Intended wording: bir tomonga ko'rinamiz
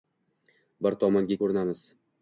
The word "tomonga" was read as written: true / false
true